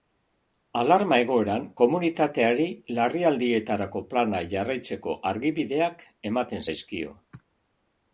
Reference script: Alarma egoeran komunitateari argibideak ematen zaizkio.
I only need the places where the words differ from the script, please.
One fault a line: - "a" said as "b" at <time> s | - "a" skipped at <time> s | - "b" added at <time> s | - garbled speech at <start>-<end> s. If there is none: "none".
- "larrialdietarako plana jarraitzeko" added at 3.0 s